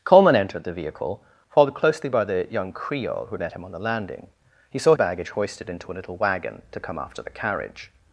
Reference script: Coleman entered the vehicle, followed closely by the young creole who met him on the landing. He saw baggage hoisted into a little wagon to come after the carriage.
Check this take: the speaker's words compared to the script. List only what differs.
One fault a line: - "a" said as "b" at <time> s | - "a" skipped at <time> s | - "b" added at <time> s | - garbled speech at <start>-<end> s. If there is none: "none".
none